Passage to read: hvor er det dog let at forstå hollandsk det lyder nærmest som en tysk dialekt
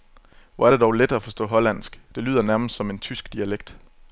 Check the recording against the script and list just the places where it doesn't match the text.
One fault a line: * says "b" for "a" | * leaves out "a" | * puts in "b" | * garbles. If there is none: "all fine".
all fine